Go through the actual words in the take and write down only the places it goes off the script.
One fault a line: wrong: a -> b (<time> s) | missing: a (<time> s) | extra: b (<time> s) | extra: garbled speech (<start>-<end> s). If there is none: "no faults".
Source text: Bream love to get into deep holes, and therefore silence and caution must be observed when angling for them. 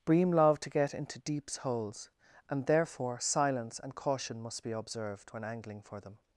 wrong: deep -> deeps (1.2 s)